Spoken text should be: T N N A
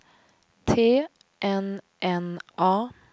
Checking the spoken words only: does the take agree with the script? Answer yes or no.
yes